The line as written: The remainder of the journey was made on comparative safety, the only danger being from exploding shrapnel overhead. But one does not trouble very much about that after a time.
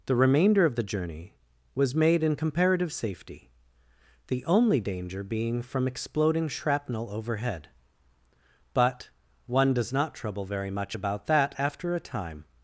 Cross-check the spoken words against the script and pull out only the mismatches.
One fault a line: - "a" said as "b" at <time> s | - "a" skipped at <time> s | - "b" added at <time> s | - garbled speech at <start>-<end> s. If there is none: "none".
- "on" said as "in" at 2.2 s